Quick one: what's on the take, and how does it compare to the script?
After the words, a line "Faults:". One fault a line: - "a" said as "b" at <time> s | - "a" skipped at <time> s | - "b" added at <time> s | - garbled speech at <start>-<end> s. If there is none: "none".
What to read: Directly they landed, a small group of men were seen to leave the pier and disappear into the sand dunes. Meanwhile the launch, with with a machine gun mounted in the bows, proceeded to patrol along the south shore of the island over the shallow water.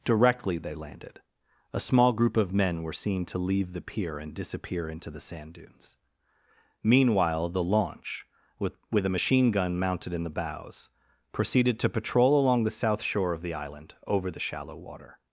Directly they landed, a small group of men were seen to leave the pier and disappear into the sand dunes. Meanwhile the launch, with with a machine gun mounted in the bows, proceeded to patrol along the south shore of the island over the shallow water.
Faults:
none